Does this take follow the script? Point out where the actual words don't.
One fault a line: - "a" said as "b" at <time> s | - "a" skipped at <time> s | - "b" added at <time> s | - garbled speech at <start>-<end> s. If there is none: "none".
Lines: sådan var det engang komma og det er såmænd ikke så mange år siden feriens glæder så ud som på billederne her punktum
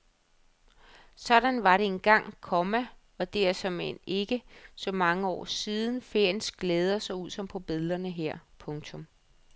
none